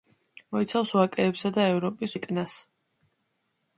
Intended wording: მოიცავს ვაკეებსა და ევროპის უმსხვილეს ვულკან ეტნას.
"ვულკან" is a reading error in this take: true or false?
true